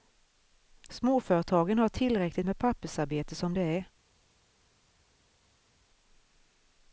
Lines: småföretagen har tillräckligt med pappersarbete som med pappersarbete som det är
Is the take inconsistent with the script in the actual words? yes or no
yes